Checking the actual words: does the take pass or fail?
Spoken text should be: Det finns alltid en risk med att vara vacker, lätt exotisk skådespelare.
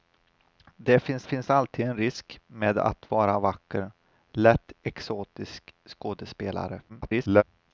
fail